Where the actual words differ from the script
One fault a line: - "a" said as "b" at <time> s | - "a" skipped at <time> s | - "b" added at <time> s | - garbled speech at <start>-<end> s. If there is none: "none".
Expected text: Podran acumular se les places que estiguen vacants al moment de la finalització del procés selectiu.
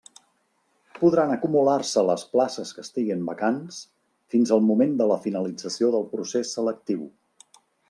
- "fins" added at 4.3 s